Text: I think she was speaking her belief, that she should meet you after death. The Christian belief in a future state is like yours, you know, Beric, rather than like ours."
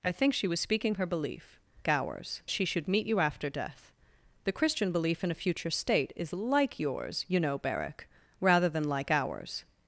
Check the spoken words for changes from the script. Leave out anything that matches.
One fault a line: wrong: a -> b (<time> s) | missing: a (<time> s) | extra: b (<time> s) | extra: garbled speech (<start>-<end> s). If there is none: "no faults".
wrong: that -> ours (1.9 s)